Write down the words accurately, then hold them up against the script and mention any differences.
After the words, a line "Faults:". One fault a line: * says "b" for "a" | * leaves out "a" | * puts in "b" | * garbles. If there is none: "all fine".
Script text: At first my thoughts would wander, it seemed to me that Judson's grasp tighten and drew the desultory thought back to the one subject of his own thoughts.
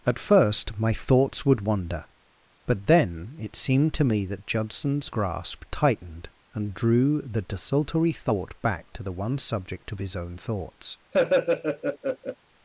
At first my thoughts would wander, but then it seemed to me that Judson's grasp tightened and drew the desultory thought back to the one subject of his own thoughts.
Faults:
* puts in "but then"
* says "tightened" for "tighten"